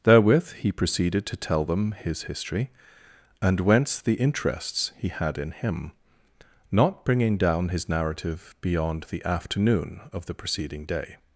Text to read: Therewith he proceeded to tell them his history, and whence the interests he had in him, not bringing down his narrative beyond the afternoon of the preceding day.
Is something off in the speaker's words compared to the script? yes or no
no